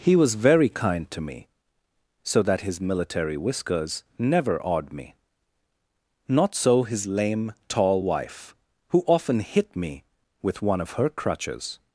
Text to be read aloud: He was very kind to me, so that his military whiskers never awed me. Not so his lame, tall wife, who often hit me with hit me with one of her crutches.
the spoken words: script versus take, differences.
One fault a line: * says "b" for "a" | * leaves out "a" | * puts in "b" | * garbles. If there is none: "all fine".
* leaves out "hit me with"